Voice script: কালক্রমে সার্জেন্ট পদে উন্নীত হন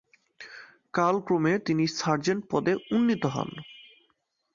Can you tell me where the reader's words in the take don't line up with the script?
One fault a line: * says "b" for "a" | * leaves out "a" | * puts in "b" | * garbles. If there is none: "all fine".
* puts in "তিনি"